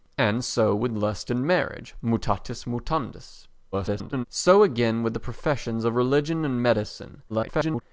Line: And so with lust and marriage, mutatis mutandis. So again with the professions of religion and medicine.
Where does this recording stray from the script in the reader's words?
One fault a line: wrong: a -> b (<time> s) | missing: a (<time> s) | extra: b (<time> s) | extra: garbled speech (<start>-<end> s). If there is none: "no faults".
extra: garbled speech (3.7-4.2 s)
extra: garbled speech (7.3-7.8 s)